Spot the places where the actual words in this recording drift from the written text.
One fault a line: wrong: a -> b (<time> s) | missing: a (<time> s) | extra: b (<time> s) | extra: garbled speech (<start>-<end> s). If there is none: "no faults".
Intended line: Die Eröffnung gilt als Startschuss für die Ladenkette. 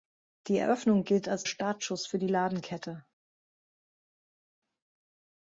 no faults